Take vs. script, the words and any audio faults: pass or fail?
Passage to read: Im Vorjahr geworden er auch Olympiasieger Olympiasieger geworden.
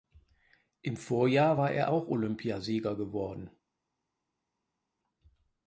fail